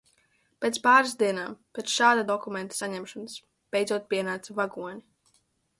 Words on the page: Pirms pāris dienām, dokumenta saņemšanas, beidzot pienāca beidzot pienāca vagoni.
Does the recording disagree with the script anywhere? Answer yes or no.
yes